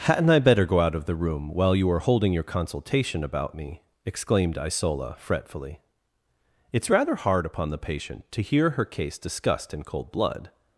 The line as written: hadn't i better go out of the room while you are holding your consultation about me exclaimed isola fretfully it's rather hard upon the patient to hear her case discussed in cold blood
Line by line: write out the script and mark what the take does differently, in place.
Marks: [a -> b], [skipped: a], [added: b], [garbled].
hadn't i better go out of the room while you are holding your consultation about me exclaimed isola fretfully it's rather hard upon the patient to hear her case discussed in cold blood